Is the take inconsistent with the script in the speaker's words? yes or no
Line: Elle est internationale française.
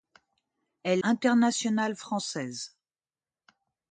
yes